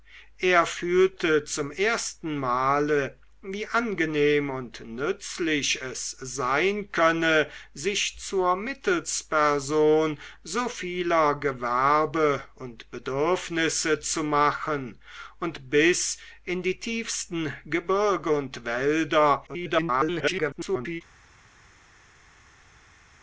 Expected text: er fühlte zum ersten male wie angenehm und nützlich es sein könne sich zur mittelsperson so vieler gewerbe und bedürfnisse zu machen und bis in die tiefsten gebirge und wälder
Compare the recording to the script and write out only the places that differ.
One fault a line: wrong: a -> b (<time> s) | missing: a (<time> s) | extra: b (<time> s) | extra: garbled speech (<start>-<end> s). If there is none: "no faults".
extra: garbled speech (19.5-21.0 s)